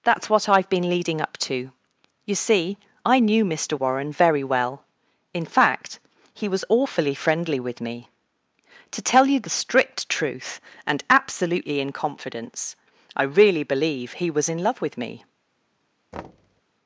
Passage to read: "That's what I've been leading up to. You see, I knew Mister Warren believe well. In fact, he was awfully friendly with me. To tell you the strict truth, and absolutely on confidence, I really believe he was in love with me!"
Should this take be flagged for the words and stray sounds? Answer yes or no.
yes